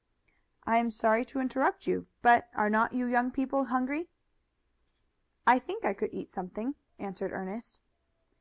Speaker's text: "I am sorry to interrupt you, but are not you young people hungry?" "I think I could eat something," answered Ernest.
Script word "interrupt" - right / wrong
right